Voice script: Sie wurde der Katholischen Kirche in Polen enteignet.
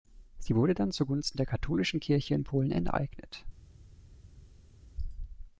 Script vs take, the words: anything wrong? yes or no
yes